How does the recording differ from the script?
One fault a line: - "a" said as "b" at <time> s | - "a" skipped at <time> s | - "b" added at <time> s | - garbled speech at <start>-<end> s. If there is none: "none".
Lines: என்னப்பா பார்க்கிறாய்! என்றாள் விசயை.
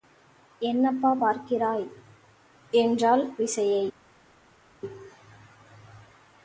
none